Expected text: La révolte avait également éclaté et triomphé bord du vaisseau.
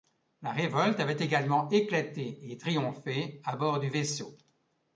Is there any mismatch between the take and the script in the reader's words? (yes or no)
yes